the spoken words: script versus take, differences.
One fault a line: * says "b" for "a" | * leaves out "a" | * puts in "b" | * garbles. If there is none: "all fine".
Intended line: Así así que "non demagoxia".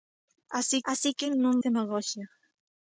all fine